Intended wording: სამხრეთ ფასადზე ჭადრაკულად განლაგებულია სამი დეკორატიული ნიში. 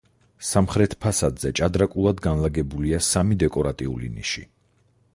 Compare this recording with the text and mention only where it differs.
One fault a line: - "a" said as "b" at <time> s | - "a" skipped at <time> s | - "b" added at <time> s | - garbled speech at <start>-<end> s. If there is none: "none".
none